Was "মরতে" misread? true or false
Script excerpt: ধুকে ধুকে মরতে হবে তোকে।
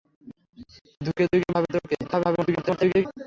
true